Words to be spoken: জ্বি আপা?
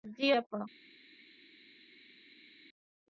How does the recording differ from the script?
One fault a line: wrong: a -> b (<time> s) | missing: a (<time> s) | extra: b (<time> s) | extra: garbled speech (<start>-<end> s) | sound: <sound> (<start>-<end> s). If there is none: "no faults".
no faults